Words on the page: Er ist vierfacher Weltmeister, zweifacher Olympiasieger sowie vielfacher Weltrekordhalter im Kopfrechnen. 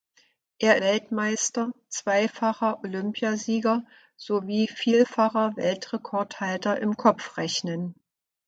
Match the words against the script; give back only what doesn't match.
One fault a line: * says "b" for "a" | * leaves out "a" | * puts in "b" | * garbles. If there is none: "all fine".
* leaves out "ist vierfacher"